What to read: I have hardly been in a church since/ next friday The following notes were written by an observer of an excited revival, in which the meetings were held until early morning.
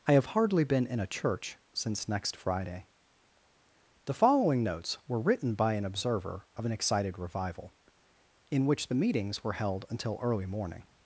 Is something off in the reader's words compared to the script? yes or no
no